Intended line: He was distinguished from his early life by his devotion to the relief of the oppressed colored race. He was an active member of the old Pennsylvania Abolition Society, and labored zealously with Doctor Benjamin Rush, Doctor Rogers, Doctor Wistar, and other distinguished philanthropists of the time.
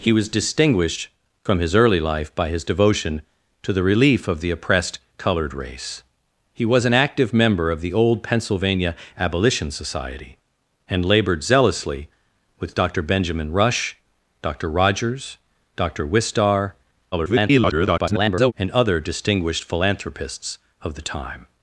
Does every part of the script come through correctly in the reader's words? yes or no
no